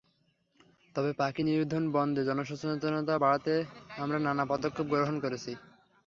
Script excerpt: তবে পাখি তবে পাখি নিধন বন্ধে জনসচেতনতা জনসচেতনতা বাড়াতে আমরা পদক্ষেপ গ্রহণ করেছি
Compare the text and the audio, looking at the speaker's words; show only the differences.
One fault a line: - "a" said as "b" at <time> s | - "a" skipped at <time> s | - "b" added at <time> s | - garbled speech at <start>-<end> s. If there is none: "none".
- "তবে পাখি" skipped at 1.4 s
- "জনসচেতনতা" skipped at 3.1 s
- "নানা" added at 4.2 s